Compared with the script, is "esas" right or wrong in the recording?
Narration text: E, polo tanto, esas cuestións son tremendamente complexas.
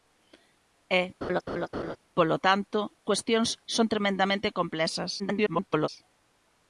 wrong